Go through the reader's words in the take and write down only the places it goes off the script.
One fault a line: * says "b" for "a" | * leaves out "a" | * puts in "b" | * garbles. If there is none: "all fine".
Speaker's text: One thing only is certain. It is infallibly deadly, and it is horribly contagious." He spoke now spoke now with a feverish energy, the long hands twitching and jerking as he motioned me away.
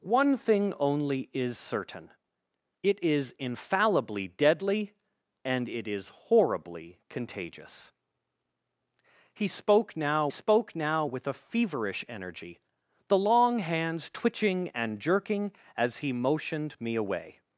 all fine